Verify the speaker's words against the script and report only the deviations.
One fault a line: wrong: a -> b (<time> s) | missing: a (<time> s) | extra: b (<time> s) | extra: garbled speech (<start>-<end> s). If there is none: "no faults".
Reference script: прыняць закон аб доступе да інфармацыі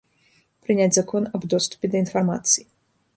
no faults